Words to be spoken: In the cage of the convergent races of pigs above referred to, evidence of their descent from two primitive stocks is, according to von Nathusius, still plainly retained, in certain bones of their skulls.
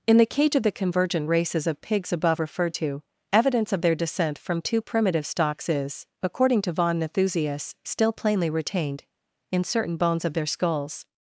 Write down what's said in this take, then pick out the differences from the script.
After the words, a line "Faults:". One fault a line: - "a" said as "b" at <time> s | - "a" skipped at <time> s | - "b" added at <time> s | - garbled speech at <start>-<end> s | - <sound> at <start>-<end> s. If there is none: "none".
In the cage of the convergent races of pigs above referred to, evidence of their descent from two primitive stocks is, according to von Nathusius, still plainly retained, in certain bones of their skulls.
Faults:
none